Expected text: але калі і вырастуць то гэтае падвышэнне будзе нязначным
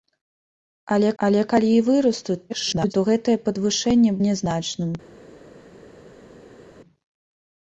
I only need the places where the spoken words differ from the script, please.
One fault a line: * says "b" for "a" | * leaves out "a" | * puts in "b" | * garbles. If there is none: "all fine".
* puts in "але"
* garbles
* leaves out "будзе"